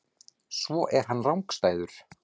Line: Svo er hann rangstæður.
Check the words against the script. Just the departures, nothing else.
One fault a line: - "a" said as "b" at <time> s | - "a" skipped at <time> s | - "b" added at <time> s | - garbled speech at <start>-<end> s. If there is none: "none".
none